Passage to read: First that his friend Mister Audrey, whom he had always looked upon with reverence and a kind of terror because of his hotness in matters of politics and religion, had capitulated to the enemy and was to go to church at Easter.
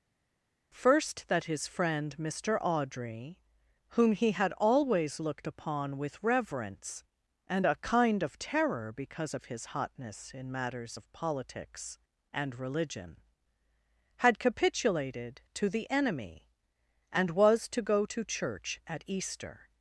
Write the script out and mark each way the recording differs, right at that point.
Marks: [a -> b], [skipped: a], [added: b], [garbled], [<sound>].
First that his friend Mister Audrey, whom he had always looked upon with reverence and a kind of terror because of his hotness in matters of politics and religion, had capitulated to the enemy and was to go to church at Easter.